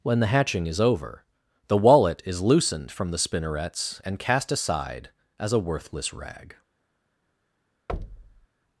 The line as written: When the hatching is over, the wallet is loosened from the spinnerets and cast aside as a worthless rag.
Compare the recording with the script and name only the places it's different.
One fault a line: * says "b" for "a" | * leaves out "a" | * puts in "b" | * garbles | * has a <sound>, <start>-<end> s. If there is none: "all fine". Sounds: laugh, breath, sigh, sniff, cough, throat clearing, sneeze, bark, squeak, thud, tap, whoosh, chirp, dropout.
* has a thud, 7.9-8.5 s